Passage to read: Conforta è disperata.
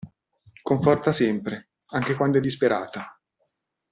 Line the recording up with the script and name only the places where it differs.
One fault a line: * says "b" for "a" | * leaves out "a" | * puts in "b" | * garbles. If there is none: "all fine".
* puts in "sempre anche quando"